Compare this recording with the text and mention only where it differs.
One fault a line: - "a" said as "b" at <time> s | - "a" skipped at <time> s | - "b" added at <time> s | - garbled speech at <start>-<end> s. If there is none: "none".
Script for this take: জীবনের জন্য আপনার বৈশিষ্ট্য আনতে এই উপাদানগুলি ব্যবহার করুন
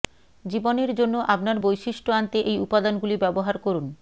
none